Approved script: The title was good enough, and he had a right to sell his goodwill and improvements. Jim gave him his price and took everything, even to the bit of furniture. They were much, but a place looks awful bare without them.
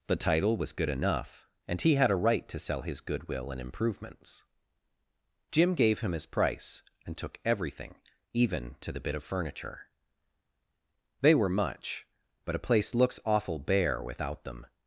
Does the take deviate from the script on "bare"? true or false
false